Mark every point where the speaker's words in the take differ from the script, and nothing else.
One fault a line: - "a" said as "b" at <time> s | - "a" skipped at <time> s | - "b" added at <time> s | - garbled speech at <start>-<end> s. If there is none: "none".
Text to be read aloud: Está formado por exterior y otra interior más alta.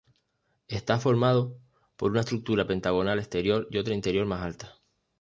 - "una estructura pentagonal" added at 2.1 s